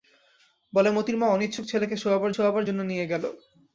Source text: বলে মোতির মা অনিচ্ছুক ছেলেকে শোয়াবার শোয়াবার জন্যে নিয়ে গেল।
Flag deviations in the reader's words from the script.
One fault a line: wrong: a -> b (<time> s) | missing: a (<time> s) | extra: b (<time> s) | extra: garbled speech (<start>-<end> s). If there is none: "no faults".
no faults